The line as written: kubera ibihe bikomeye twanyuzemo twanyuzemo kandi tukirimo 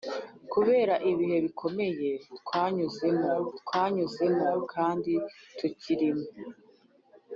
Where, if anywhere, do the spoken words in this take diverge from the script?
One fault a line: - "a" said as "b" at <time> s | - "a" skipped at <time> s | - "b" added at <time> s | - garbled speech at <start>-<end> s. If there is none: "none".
none